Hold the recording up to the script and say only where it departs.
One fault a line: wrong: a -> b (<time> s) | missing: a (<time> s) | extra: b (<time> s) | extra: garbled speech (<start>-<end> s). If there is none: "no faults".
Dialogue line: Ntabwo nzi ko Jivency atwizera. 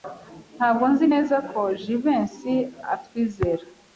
extra: neza (1.1 s)